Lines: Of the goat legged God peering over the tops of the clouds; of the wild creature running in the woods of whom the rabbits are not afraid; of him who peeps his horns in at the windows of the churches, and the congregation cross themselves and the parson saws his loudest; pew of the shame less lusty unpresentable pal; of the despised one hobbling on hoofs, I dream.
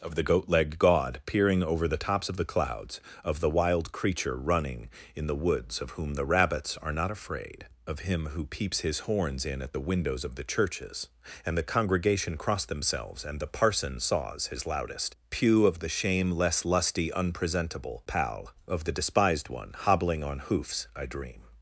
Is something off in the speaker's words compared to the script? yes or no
no